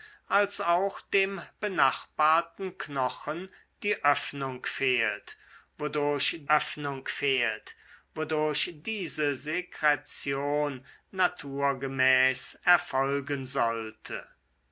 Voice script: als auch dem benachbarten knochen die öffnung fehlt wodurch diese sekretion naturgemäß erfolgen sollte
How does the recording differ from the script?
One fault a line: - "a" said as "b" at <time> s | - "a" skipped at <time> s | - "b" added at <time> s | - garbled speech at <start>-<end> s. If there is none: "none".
- "öffnung fehlt wodurch" added at 6.5 s